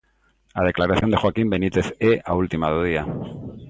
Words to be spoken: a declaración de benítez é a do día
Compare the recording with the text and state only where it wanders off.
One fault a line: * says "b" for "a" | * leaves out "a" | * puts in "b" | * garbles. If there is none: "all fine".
* puts in "joaquín"
* puts in "última"